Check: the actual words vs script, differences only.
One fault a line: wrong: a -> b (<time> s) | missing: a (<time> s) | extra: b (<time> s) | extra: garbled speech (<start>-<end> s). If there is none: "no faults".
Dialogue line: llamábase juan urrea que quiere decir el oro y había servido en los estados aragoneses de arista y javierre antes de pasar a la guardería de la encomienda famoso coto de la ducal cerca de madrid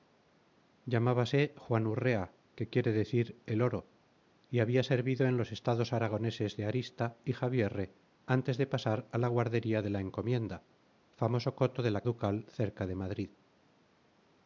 no faults